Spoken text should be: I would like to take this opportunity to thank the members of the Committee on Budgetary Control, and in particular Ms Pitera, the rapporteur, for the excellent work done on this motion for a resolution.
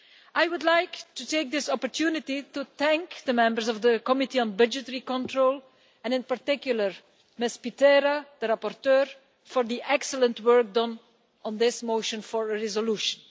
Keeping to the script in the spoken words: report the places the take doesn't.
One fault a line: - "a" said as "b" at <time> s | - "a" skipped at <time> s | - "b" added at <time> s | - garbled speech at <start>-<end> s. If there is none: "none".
none